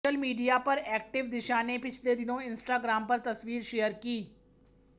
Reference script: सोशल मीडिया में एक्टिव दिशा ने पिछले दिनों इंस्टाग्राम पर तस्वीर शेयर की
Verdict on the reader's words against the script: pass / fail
fail